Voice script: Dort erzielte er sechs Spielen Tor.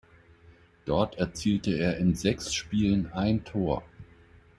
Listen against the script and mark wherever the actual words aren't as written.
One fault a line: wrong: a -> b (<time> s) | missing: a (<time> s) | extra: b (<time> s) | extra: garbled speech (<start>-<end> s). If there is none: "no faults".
extra: in (2.0 s)
extra: ein (3.1 s)